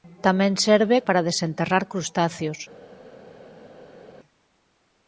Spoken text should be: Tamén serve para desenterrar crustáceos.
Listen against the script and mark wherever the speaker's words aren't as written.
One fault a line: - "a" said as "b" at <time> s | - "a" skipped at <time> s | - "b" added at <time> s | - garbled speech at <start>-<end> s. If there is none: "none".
none